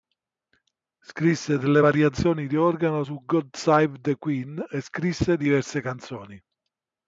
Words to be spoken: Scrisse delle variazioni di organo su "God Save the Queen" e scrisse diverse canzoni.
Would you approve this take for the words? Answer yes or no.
yes